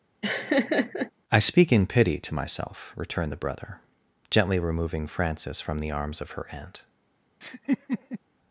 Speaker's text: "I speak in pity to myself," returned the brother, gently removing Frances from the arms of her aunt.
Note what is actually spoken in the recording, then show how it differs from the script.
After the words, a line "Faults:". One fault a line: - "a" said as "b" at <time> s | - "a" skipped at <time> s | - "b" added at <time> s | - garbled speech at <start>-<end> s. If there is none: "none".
"I speak in pity to myself," returned the brother, gently removing Frances from the arms of her aunt.
Faults:
none